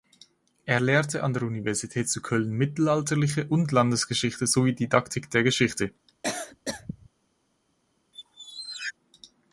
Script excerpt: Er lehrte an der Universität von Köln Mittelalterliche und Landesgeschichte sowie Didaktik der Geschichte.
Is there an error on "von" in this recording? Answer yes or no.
yes